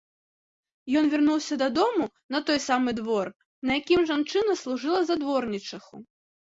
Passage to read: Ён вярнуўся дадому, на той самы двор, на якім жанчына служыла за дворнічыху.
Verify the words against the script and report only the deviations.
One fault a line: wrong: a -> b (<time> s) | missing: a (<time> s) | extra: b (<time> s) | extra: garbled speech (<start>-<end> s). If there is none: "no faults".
no faults